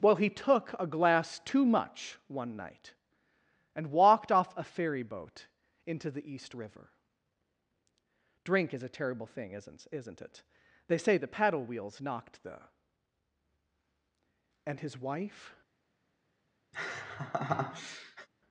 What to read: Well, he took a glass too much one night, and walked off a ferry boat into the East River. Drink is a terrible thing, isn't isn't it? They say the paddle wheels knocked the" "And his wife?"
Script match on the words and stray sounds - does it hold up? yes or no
no